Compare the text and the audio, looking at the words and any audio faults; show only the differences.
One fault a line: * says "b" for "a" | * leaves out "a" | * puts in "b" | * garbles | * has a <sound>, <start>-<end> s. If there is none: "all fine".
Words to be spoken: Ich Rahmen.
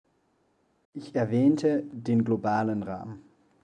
* puts in "erwähnte den globalen"